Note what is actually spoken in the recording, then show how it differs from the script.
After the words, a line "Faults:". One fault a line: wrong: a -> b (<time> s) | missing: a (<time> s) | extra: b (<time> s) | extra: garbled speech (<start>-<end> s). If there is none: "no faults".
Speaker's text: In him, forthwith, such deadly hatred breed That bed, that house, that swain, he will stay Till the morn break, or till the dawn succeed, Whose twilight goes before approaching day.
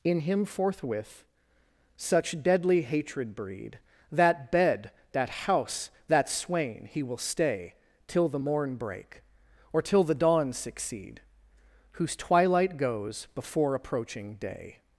In him, forthwith, such deadly hatred breed That bed, that house, that swain, he will stay Till the morn break, or till the dawn succeed, Whose twilight goes before approaching day.
Faults:
no faults